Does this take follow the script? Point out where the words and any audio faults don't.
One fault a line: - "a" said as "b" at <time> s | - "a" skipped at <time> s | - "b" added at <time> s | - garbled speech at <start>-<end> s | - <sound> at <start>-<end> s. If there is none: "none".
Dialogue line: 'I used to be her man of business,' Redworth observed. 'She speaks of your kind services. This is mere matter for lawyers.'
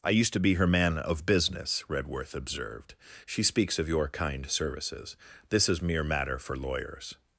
none